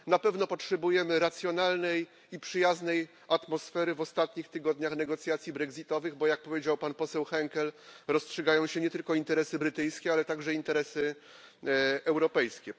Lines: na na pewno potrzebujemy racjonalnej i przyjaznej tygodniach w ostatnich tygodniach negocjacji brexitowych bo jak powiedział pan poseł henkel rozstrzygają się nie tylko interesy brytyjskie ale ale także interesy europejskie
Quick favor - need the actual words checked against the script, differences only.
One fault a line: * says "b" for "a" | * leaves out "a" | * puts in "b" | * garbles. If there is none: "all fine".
* leaves out "na"
* says "atmosfery" for "tygodniach"
* leaves out "ale"